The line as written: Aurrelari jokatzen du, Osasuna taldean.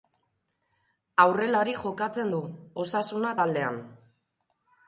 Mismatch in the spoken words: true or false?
false